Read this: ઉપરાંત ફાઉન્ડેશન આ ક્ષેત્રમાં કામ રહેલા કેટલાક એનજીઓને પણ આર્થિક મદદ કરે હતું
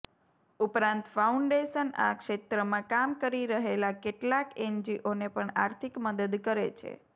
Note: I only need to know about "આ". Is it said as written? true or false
true